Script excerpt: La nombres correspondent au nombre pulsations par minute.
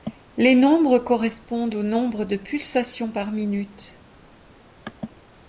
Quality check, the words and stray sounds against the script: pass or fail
fail